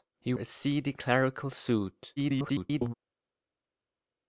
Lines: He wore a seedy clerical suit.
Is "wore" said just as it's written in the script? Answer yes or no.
no